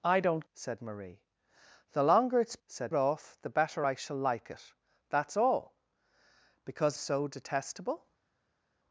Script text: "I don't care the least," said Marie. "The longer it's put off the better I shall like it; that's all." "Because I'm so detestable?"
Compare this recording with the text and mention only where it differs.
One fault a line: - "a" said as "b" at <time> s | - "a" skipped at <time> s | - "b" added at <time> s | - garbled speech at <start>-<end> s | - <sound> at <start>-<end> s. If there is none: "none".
- "care the least" skipped at 0.5 s
- "put" said as "said" at 2.7 s
- "I'm" skipped at 7.0 s